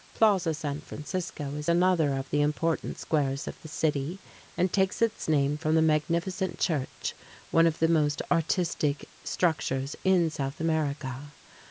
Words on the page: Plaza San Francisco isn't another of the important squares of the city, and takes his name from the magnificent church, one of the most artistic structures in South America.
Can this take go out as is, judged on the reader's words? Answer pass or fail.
fail